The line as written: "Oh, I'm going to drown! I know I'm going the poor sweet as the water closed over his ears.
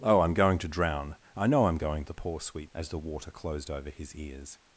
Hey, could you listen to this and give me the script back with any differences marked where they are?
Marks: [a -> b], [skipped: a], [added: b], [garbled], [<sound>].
"Oh, I'm going to drown! I know I'm going the poor sweet as the water closed over his ears.